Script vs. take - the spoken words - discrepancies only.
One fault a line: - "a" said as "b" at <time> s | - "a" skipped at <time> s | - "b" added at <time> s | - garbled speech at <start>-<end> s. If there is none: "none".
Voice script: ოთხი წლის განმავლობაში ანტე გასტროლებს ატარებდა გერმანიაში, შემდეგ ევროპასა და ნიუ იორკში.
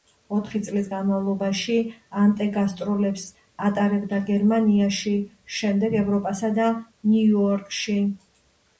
none